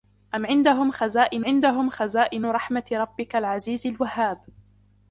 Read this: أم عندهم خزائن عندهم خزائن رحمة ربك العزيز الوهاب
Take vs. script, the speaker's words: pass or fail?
pass